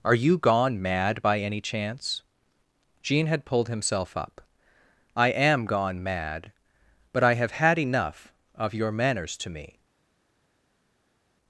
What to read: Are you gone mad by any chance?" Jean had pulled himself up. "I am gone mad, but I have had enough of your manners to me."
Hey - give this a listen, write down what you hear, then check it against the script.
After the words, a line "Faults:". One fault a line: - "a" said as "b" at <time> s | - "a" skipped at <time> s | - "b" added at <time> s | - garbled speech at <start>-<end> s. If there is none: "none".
Are you gone mad by any chance?" Jean had pulled himself up. "I am gone mad, but I have had enough of your manners to me."
Faults:
none